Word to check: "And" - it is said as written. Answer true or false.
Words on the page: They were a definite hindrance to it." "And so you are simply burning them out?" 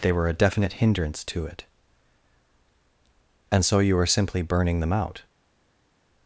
true